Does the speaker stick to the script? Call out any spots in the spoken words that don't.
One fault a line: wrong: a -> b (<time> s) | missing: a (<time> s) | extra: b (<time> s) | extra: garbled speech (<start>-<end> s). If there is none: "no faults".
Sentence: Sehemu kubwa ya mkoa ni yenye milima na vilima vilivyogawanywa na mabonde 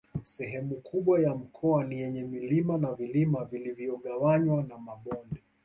no faults